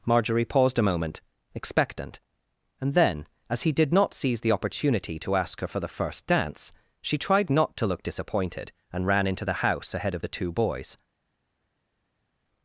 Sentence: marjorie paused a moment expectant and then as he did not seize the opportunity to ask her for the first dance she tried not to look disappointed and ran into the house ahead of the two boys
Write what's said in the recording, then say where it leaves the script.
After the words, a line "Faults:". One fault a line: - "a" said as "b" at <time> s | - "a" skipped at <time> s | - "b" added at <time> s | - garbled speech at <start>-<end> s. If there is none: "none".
marjorie paused a moment expectant and then as he did not seize the opportunity to ask her for the first dance she tried not to look disappointed and ran into the house ahead of the two boys
Faults:
none